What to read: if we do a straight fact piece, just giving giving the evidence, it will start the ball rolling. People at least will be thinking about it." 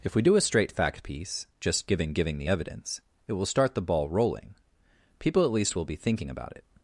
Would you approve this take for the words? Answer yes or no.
yes